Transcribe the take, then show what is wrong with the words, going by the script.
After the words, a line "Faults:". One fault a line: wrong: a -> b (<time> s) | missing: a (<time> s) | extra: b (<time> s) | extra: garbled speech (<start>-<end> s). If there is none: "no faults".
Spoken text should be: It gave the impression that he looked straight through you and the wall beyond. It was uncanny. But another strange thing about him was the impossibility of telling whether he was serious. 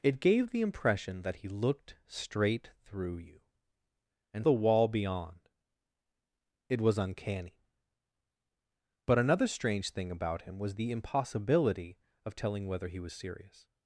It gave the impression that he looked straight through you and the wall beyond. It was uncanny. But another strange thing about him was the impossibility of telling whether he was serious.
Faults:
no faults